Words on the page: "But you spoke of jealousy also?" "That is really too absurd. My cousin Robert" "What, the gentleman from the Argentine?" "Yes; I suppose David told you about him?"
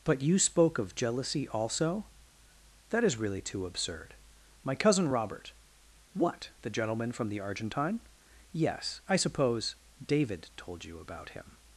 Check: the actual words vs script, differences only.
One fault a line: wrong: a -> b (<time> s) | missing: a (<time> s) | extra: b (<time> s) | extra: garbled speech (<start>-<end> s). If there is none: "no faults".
no faults